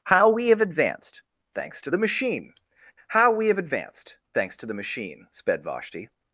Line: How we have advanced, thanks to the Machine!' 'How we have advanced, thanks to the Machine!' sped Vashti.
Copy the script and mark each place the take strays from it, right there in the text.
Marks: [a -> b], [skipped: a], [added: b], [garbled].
How we have advanced, thanks to the Machine!' 'How we have advanced, thanks to the Machine!' sped Vashti.